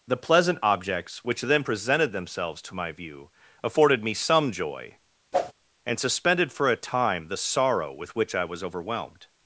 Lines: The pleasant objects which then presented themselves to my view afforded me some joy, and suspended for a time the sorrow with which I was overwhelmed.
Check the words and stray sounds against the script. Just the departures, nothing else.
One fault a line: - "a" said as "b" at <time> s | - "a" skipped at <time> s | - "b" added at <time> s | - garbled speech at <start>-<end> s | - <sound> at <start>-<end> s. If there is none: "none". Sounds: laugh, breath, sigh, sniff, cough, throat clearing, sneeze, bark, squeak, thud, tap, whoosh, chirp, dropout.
- whoosh at 5.3-5.5 s